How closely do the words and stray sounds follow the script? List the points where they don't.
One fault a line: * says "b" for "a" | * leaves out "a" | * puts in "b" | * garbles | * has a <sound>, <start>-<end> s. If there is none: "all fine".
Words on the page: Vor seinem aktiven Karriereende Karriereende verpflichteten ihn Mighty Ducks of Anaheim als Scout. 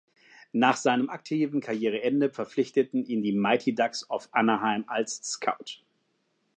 * says "Nach" for "Vor"
* leaves out "Karriereende"
* puts in "die"